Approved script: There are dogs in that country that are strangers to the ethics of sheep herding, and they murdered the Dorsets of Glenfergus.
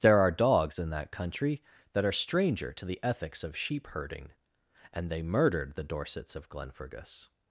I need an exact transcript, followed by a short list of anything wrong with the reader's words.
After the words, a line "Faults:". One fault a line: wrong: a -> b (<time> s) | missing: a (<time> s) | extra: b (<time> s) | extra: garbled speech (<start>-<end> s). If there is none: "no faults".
There are dogs in that country that are stranger to the ethics of sheep herding, and they murdered the Dorsets of Glenfergus.
Faults:
wrong: strangers -> stranger (2.1 s)